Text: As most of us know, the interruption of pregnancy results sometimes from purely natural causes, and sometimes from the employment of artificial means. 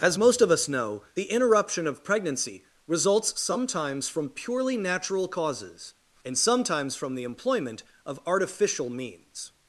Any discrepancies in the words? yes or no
no